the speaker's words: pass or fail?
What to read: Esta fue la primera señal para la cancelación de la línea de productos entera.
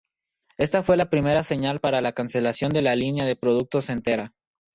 pass